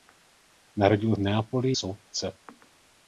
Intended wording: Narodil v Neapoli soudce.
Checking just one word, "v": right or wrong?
right